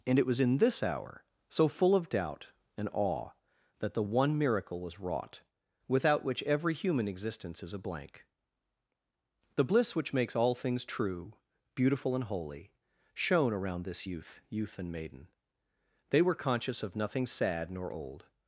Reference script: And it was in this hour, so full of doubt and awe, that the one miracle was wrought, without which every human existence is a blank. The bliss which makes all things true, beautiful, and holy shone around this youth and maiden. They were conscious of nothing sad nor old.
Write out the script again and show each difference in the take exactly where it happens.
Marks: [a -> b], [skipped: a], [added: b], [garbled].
And it was in this hour, so full of doubt and awe, that the one miracle was wrought, without which every human existence is a blank. The bliss which makes all things true, beautiful, and holy shone around this youth [added: youth] and maiden. They were conscious of nothing sad nor old.